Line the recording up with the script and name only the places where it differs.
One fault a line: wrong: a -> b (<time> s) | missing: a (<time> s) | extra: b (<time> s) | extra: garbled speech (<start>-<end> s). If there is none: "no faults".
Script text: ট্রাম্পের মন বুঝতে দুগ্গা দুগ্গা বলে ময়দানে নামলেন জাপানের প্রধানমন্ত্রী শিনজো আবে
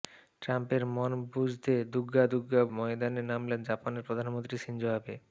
missing: বলে (2.6 s)